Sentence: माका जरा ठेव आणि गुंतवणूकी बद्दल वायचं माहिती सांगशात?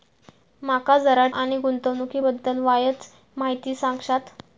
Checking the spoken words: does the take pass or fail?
fail